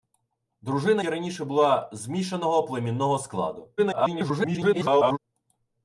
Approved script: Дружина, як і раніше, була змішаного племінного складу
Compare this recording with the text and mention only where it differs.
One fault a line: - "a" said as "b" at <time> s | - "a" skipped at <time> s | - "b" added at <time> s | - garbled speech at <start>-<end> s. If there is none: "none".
- "як" skipped at 1.0 s
- garbled speech at 3.8-5.2 s